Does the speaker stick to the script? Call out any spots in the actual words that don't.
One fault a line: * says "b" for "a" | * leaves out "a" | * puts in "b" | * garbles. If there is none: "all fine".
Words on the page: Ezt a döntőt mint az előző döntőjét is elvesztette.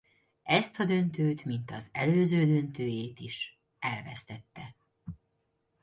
all fine